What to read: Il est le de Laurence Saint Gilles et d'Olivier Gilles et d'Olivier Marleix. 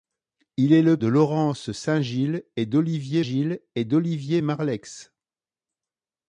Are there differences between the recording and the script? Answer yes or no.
no